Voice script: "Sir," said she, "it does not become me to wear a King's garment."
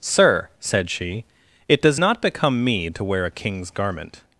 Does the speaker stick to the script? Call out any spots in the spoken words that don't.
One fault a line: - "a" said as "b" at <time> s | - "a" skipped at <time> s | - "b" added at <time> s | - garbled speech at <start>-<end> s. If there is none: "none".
none